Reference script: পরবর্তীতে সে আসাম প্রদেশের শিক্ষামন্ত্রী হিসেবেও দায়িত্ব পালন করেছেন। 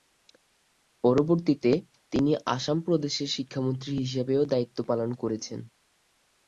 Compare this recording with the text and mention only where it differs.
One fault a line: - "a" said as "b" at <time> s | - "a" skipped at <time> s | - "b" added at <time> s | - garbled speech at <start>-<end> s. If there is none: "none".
- "সে" said as "তিনি" at 2.1 s